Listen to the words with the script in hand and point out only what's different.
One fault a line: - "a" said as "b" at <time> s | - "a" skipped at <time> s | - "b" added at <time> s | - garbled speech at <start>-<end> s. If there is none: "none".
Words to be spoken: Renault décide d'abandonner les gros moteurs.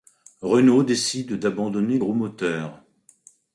- "les" skipped at 2.0 s